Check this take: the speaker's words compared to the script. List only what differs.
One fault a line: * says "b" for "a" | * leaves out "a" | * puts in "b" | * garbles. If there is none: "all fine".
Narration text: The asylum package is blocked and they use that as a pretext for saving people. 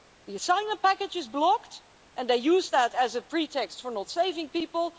* puts in "not"